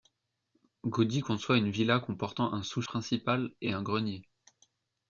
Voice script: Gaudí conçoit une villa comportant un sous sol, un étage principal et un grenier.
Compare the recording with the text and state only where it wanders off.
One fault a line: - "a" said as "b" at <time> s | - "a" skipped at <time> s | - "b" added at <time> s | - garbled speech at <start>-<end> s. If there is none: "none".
- "sol un étage" skipped at 2.8 s